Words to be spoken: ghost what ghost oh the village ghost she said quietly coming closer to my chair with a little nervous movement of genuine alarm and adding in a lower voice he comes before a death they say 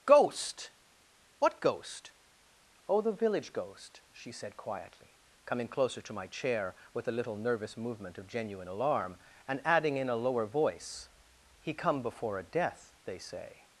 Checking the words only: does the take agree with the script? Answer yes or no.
no